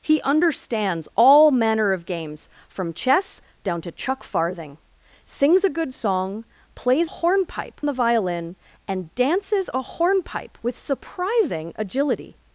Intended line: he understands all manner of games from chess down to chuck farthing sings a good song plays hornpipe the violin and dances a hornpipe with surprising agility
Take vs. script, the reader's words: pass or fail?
pass